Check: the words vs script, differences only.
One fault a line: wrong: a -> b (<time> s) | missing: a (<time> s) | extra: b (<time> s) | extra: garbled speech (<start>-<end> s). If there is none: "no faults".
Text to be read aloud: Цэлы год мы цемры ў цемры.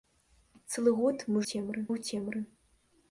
no faults